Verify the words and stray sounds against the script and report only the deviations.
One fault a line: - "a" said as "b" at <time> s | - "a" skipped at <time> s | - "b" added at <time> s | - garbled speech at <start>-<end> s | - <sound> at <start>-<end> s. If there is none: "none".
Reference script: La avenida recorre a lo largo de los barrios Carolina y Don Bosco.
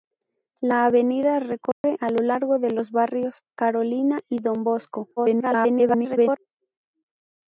- dropout at 1.7-1.8 s
- garbled speech at 5.2-6.4 s